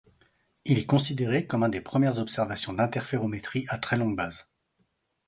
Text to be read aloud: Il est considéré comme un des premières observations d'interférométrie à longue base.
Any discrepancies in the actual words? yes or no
yes